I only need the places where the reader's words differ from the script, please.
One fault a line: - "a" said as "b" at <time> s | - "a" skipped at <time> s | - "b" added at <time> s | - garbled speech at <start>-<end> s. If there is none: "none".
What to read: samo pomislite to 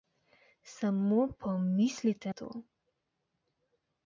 none